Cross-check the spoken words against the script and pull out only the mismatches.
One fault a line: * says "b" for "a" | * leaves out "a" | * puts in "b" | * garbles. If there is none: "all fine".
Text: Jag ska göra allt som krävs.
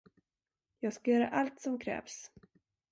all fine